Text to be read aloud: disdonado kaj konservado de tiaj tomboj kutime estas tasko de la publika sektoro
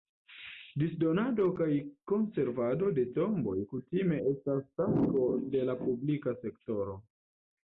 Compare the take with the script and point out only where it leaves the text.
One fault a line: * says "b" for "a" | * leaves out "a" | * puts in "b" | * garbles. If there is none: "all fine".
* leaves out "tiaj"